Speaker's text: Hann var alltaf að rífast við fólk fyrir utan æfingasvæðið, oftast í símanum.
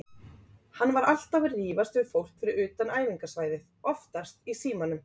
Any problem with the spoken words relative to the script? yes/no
no